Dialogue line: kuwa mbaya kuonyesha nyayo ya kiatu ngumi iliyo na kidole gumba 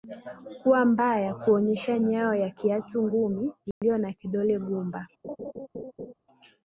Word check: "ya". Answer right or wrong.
right